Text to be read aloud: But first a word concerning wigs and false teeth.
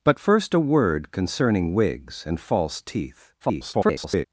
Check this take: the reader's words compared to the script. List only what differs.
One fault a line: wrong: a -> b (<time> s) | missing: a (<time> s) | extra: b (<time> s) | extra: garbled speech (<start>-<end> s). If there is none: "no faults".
extra: garbled speech (3.4-4.3 s)